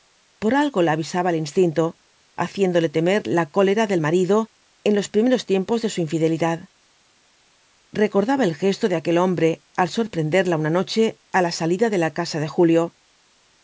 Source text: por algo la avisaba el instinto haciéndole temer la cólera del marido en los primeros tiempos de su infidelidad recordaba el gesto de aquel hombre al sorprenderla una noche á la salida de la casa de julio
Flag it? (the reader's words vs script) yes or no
no